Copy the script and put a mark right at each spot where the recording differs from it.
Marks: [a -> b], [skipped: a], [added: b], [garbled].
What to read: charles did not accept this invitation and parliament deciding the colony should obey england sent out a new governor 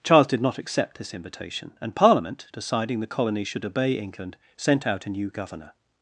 charles did not accept this invitation and parliament deciding the colony should obey england sent out a new governor